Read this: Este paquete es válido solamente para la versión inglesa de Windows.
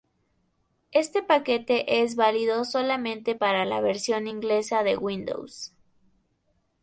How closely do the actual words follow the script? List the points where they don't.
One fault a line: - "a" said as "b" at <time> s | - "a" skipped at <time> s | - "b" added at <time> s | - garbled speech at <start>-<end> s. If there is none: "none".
none